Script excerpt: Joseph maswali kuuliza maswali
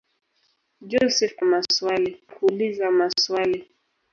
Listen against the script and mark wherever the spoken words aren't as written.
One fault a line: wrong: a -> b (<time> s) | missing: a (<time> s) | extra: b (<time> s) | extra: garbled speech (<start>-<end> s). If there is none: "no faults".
no faults